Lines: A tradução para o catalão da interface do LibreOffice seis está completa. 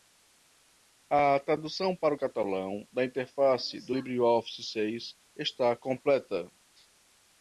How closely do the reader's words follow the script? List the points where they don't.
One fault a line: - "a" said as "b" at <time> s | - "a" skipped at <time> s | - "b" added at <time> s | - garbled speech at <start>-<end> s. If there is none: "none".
none